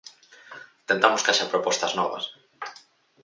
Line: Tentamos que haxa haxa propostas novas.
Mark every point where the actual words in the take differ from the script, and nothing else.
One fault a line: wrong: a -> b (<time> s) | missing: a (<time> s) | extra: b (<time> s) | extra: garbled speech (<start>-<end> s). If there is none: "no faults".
missing: haxa (1.5 s)